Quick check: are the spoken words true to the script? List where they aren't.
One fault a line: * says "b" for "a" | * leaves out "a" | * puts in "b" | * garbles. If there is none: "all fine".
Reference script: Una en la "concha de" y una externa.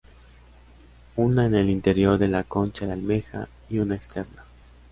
* puts in "el interior de"
* puts in "almeja"